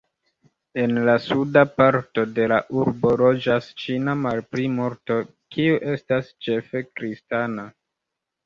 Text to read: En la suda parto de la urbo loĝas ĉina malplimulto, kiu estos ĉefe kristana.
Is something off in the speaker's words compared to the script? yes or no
yes